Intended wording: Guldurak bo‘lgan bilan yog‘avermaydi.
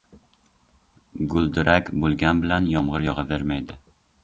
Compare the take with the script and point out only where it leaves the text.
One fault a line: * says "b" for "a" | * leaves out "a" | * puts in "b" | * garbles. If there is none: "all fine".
* puts in "yomg‘ir"